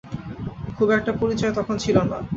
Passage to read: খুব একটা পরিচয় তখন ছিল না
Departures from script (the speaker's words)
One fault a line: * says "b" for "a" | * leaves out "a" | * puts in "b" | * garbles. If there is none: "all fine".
all fine